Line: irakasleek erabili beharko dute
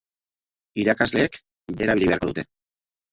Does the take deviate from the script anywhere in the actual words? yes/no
no